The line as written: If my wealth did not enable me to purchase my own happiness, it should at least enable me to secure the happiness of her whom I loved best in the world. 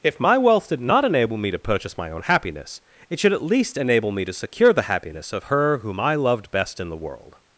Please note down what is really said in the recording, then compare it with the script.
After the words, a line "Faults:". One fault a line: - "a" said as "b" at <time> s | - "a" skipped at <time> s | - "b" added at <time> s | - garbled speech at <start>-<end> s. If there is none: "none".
If my wealth did not enable me to purchase my own happiness, it should at least enable me to secure the happiness of her whom I loved best in the world.
Faults:
none